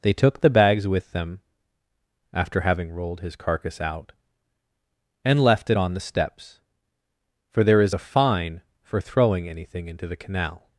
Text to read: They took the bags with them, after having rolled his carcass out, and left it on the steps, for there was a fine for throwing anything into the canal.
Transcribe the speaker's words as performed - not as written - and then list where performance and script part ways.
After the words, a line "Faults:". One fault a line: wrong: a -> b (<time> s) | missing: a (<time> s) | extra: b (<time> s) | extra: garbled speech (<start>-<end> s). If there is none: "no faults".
They took the bags with them, after having rolled his carcass out, and left it on the steps, for there is a fine for throwing anything into the canal.
Faults:
wrong: was -> is (7.8 s)